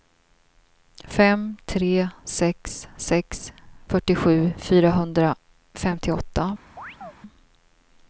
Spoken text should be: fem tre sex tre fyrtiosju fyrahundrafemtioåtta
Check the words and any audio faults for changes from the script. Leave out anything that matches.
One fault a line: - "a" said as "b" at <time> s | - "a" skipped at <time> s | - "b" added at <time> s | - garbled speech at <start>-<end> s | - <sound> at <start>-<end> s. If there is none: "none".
- "tre" said as "sex" at 3.0 s
- chirp at 6.8-7.1 s